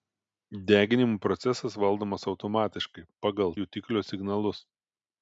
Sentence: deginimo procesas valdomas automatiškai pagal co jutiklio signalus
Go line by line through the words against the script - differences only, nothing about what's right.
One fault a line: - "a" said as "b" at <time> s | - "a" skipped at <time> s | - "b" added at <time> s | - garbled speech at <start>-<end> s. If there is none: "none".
- "co" skipped at 3.5 s